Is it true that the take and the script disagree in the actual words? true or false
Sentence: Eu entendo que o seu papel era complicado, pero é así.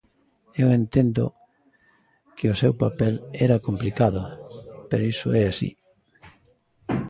true